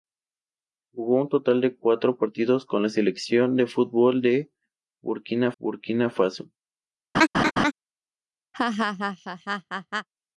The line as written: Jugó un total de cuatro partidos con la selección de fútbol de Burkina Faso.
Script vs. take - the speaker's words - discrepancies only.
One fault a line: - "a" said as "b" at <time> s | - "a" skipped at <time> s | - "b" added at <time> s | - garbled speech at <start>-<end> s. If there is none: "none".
- "Burkina" added at 5.6 s